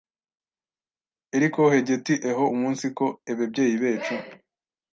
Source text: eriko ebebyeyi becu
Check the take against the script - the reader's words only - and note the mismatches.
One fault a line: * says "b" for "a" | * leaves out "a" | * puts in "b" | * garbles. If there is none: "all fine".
* puts in "hegeti eho umunsiko"